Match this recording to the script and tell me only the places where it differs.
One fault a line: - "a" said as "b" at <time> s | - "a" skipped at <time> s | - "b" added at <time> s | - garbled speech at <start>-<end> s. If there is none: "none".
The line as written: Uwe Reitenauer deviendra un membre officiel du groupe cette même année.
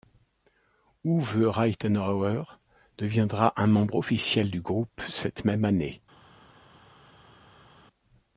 none